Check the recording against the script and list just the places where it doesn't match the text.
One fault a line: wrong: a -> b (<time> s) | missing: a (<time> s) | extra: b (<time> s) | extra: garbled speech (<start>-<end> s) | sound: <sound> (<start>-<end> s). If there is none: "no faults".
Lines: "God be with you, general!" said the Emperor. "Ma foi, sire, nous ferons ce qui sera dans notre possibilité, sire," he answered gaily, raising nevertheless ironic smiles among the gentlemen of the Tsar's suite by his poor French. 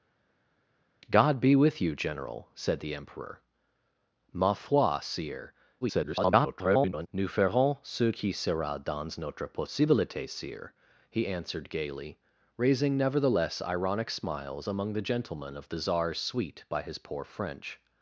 extra: garbled speech (5.8-7.1 s)